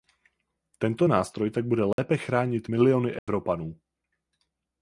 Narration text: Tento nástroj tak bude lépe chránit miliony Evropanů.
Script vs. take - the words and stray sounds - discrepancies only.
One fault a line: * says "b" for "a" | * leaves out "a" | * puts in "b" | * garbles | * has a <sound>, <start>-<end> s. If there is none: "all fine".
* has a dropout, 1.9-2.0 s
* has a dropout, 3.2-3.3 s